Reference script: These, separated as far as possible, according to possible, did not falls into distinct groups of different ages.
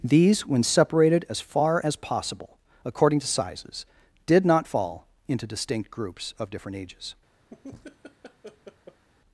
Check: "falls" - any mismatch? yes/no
yes